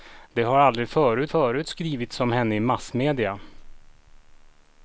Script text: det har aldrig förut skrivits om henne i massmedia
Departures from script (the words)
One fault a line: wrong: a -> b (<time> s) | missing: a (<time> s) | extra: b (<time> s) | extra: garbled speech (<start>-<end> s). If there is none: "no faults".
extra: förut (1.3 s)